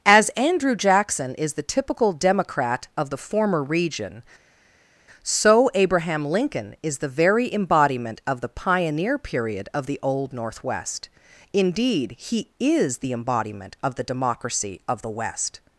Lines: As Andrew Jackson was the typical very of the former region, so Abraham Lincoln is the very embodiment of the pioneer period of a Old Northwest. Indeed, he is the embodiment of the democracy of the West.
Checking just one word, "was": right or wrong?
wrong